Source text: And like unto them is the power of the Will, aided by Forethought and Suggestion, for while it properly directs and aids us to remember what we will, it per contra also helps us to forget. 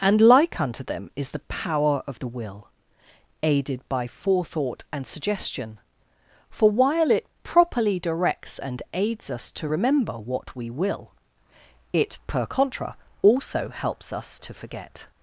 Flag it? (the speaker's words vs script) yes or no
no